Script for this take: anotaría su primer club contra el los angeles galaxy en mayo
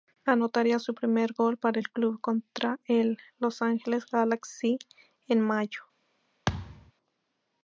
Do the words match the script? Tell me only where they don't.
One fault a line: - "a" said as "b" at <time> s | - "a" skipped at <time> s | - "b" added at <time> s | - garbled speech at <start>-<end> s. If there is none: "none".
- "gol para el" added at 1.3 s